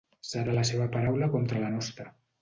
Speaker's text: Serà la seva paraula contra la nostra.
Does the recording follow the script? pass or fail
pass